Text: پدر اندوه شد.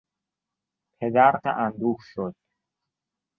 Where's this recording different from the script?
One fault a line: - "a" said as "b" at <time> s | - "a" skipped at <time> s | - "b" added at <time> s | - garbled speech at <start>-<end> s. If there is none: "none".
none